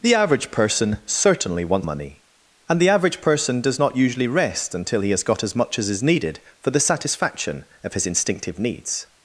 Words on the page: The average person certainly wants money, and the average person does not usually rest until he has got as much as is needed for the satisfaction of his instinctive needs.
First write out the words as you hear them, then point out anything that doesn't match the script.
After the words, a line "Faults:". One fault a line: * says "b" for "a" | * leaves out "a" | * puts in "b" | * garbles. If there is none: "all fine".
The average person certainly wants money, and the average person does not usually rest until he has got as much as is needed for the satisfaction of his instinctive needs.
Faults:
all fine